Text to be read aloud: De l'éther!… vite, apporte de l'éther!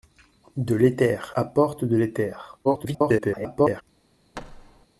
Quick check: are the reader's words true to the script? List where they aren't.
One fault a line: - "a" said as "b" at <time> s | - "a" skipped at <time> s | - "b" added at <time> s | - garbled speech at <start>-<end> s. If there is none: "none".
- "vite" skipped at 1.3 s
- garbled speech at 2.6-3.8 s